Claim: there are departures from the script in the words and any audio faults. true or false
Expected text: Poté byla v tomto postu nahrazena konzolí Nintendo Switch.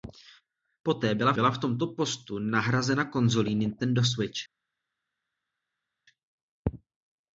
true